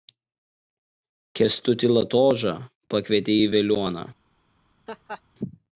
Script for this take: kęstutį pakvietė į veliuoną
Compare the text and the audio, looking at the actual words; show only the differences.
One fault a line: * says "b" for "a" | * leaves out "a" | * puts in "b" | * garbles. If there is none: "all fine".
* puts in "latožą"